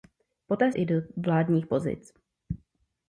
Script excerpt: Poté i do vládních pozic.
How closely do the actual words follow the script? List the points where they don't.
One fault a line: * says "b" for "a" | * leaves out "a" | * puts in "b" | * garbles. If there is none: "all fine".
all fine